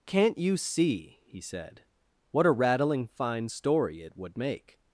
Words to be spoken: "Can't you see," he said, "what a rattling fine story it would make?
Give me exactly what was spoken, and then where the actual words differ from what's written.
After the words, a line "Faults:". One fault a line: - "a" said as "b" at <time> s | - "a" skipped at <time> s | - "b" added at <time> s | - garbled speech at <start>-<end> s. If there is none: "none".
"Can't you see," he said, "what a rattling fine story it would make?
Faults:
none